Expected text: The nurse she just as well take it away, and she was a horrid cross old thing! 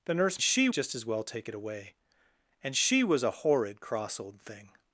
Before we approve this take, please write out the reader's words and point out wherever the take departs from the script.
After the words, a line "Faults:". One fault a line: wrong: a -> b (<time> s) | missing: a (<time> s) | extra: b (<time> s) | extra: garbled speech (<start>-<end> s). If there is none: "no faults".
The nurse she just as well take it away, and she was a horrid cross old thing!
Faults:
no faults